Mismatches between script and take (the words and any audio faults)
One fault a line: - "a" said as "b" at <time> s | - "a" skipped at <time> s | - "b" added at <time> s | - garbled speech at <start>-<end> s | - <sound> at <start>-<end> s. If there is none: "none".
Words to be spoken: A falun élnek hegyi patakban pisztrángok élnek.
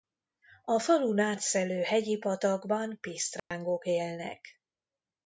- "élnek" said as "átszelő" at 1.2 s
- dropout at 3.4-3.5 s